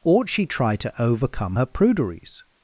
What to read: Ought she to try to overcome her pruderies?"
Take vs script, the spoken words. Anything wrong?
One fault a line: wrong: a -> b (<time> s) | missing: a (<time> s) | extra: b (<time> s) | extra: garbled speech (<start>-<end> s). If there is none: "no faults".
missing: to (0.5 s)